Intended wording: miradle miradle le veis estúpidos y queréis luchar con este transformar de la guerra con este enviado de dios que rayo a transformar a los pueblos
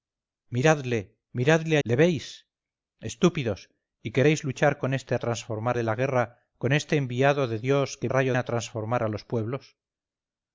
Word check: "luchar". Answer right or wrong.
right